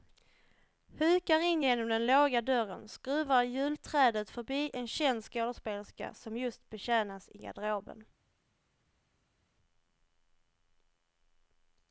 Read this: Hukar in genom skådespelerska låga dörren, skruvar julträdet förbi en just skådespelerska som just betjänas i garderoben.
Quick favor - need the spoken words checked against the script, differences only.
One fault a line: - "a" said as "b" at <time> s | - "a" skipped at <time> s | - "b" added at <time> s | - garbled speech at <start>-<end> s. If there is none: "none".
- "skådespelerska" said as "den" at 1.9 s
- "just" said as "känd" at 4.9 s